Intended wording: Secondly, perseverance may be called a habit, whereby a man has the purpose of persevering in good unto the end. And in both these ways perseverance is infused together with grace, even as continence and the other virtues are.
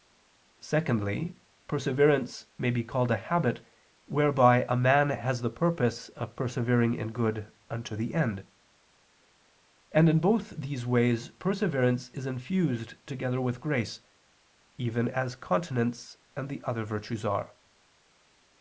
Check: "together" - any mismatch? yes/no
no